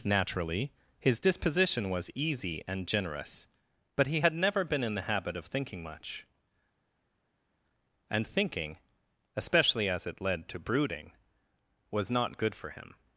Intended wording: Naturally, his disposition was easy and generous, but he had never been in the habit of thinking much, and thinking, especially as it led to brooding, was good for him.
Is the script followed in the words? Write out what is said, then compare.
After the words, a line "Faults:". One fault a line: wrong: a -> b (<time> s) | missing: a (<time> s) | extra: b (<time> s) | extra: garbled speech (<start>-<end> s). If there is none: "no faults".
Naturally, his disposition was easy and generous, but he had never been in the habit of thinking much, and thinking, especially as it led to brooding, was not good for him.
Faults:
extra: not (12.1 s)